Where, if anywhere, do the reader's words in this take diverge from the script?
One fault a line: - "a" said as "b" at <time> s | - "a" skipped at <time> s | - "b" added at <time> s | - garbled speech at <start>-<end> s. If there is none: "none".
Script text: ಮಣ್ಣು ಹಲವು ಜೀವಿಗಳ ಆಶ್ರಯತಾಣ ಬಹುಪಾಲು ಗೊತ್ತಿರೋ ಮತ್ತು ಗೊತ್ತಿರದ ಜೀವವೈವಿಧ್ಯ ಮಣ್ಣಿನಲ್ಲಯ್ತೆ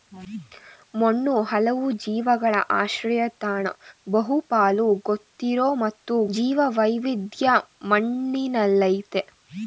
- "ಗೊತ್ತಿರದ" skipped at 6.2 s